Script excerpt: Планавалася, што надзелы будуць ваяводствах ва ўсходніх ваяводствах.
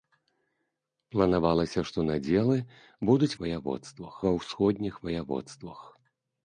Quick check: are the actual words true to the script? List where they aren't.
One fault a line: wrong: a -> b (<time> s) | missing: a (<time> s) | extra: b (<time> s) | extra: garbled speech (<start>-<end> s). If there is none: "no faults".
no faults